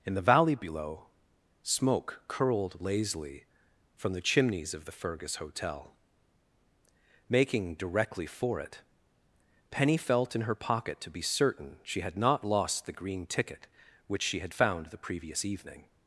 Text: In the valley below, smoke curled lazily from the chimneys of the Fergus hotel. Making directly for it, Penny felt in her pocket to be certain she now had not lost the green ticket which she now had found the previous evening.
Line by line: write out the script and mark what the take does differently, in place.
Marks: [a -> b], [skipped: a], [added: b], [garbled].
In the valley below, smoke curled lazily from the chimneys of the Fergus hotel. Making directly for it, Penny felt in her pocket to be certain she [skipped: now] had not lost the green ticket which she [skipped: now] had found the previous evening.